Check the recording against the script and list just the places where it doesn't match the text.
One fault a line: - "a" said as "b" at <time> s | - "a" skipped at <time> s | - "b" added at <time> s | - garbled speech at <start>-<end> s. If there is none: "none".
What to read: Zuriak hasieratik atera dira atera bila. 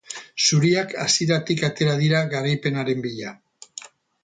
- "atera" said as "garaipenaren" at 2.3 s